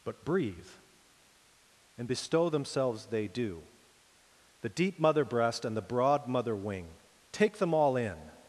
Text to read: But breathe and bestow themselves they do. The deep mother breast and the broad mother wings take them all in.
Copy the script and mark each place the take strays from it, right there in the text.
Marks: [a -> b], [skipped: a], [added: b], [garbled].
But breathe and bestow themselves they do. The deep mother breast and the broad mother [wings -> wing] take them all in.